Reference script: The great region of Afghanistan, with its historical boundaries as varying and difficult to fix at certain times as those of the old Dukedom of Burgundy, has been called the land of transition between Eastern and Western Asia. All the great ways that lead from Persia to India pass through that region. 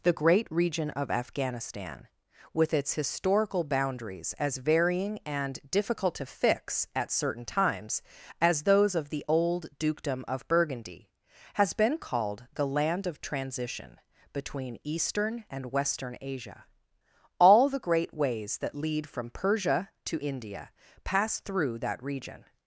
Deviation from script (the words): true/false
false